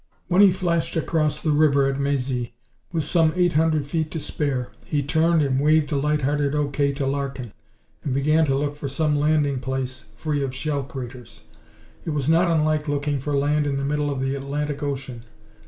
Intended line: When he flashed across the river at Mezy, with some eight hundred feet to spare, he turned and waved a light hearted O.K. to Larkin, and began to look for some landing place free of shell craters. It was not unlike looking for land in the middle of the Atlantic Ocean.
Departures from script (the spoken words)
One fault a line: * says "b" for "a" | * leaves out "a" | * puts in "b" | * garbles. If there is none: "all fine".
all fine